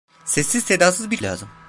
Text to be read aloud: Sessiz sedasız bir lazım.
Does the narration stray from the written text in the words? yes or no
no